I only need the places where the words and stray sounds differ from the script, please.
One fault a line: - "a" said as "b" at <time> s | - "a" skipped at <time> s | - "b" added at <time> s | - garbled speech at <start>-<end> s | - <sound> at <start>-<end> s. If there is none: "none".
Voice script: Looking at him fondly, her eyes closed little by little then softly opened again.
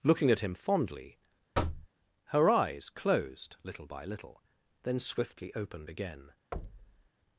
- thud at 1.5-1.9 s
- "softly" said as "swiftly" at 5.0 s
- thud at 6.5-7.1 s